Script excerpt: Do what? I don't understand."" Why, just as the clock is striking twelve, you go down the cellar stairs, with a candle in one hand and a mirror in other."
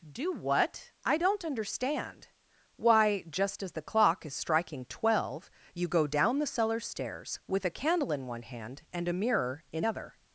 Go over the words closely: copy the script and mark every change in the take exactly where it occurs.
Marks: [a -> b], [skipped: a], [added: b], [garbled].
Do what? I don't understand."" Why, just as the clock is striking twelve, you go down the cellar stairs, with a candle in one hand and a mirror in other."